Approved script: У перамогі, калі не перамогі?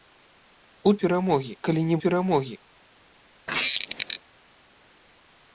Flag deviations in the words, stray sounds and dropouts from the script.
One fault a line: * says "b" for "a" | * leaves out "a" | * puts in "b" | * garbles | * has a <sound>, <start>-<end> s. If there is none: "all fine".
* has a squeak, 3.5-4.2 s